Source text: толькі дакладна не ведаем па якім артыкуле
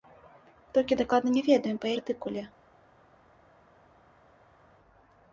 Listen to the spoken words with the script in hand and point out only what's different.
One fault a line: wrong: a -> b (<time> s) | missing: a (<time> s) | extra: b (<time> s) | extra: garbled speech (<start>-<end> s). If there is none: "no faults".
missing: якім (1.9 s)